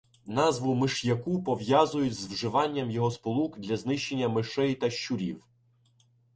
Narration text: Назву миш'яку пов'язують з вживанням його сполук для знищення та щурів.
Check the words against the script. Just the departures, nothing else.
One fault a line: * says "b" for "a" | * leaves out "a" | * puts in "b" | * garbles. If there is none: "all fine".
* puts in "мишей"